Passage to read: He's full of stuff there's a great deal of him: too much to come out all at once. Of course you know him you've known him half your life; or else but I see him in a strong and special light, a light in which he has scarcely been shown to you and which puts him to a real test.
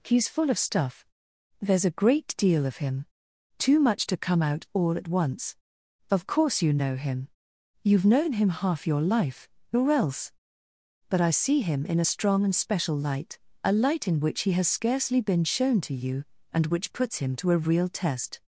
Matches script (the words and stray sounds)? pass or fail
pass